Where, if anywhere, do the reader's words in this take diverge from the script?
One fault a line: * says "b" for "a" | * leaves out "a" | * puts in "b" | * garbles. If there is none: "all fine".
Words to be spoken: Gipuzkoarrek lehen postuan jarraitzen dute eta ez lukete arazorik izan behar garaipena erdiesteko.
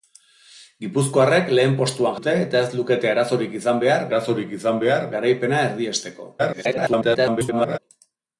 * leaves out "jarraitzen"
* puts in "arazorik izan behar"
* garbles